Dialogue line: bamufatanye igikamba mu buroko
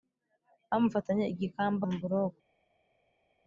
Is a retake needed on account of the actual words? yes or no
no